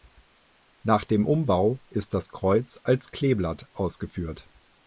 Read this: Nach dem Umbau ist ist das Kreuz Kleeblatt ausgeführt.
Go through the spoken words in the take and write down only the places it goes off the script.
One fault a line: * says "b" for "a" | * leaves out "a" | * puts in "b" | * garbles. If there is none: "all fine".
* leaves out "ist"
* puts in "als"